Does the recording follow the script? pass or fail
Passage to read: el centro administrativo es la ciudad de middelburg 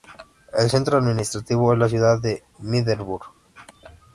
pass